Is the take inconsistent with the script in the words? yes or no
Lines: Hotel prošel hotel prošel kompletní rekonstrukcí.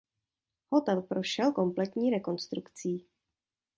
yes